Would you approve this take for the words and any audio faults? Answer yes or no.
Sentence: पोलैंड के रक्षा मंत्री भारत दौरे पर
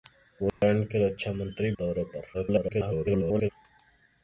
no